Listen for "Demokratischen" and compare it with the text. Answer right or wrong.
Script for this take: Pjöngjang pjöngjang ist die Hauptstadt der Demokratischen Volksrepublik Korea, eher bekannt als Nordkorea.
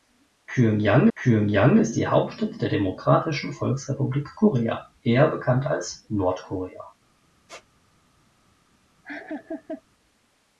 right